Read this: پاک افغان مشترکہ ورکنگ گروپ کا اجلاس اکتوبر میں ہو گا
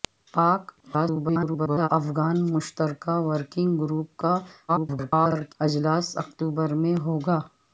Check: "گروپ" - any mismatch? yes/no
no